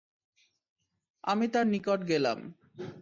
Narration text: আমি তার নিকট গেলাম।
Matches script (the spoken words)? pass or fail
pass